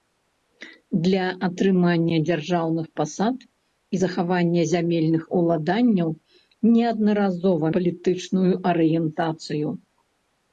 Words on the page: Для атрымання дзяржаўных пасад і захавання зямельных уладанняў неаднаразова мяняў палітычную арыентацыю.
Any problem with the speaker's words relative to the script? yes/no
yes